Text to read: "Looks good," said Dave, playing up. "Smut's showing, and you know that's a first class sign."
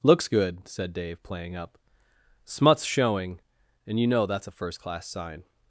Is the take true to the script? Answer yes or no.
yes